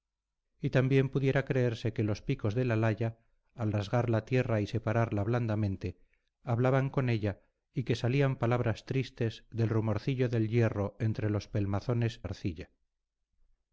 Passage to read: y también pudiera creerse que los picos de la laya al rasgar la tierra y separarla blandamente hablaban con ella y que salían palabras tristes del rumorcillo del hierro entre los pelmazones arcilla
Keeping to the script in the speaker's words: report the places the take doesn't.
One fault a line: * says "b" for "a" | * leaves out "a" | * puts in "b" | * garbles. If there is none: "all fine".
all fine